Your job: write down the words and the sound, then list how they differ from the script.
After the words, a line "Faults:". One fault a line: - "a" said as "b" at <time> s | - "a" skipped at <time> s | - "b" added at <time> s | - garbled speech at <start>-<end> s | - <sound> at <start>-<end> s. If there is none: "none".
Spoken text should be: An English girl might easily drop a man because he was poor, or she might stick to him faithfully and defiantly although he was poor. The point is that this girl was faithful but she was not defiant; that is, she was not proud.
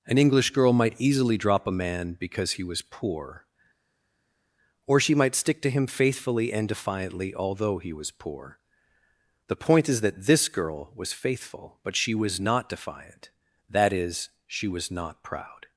An English girl might easily drop a man because he was poor, or she might stick to him faithfully and defiantly although he was poor. The point is that this girl was faithful but she was not defiant; that is, she was not proud.
Faults:
none